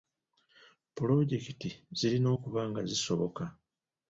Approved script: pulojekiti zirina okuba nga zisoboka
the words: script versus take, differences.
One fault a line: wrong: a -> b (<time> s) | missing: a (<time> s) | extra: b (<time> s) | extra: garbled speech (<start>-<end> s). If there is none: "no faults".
no faults